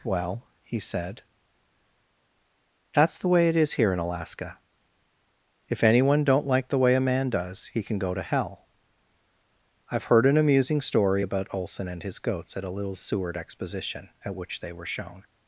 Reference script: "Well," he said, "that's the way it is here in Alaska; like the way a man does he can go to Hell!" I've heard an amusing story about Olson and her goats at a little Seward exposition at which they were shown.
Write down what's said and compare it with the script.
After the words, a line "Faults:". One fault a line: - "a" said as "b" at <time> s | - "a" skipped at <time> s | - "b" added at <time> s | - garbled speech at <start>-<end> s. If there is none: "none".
"Well," he said, "that's the way it is here in Alaska; if anyone don't like the way a man does he can go to Hell!" I've heard an amusing story about Olson and his goats at a little Seward exposition at which they were shown.
Faults:
- "if anyone don't" added at 5.7 s
- "her" said as "his" at 12.0 s